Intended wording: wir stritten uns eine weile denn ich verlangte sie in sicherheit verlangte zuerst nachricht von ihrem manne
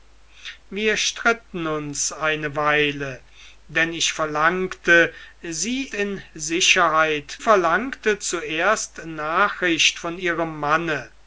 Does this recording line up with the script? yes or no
yes